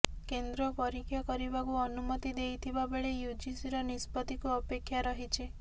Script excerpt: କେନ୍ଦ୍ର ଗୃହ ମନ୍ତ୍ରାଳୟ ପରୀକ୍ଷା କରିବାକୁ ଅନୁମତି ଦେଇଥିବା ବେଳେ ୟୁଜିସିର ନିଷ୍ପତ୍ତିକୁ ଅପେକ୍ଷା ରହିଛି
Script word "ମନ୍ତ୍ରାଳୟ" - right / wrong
wrong